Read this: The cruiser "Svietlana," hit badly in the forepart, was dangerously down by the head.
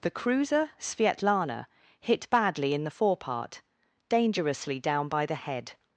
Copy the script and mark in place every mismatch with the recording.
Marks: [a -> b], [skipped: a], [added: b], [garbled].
The cruiser "Svietlana," hit badly in the forepart, [skipped: was] dangerously down by the head.